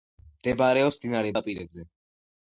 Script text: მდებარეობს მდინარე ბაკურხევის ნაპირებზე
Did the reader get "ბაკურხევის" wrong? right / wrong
wrong